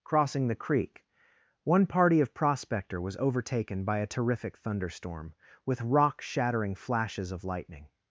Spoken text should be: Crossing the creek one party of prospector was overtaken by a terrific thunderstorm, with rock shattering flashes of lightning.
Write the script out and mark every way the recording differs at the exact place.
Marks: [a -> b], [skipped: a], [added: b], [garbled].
Crossing the creek one party of prospector was overtaken by a terrific thunderstorm, with rock shattering flashes of lightning.